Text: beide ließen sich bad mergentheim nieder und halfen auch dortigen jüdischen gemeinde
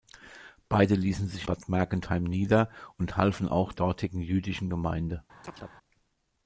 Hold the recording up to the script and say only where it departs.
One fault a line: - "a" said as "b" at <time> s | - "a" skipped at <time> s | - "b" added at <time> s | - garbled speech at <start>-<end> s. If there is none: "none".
none